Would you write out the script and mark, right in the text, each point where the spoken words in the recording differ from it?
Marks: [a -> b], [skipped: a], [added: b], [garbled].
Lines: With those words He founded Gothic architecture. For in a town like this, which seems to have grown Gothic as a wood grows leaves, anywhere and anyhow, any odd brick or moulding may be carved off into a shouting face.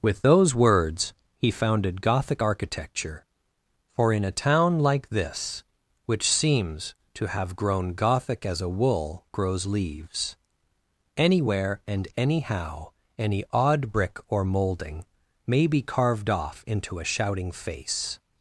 With those words He founded Gothic architecture. For in a town like this, which seems to have grown Gothic as a [wood -> wool] grows leaves, anywhere and anyhow, any odd brick or moulding may be carved off into a shouting face.